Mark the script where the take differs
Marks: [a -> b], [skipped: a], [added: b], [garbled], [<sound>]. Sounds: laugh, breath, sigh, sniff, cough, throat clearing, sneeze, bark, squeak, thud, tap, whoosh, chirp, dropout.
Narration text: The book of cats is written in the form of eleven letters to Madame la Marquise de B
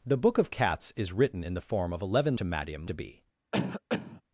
The book of cats is written in the form of eleven [skipped: letters] to Madame [skipped: la Marquise] de B [cough]